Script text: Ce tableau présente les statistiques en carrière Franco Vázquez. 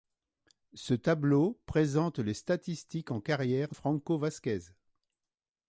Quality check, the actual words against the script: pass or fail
pass